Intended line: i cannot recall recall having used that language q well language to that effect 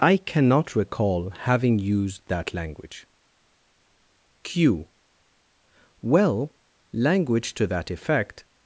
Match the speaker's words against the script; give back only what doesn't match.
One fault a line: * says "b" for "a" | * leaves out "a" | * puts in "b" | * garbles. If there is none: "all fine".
* leaves out "recall"